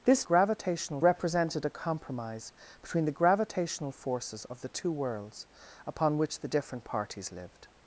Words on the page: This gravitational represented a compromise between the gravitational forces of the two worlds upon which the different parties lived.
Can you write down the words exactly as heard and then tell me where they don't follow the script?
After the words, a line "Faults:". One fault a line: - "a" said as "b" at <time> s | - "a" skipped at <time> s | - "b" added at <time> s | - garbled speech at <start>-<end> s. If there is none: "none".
This gravitational represented a compromise between the gravitational forces of the two worlds upon which the different parties lived.
Faults:
none